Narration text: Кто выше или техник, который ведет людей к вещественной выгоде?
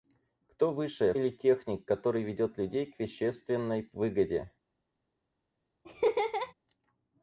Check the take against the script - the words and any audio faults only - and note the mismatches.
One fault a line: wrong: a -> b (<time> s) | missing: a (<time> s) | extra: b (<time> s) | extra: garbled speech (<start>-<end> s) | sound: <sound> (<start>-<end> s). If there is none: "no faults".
sound: laugh (5.8-6.5 s)